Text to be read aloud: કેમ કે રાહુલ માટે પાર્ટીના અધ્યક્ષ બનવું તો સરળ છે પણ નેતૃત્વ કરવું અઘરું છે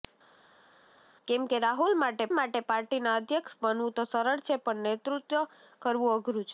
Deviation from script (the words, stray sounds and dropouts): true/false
true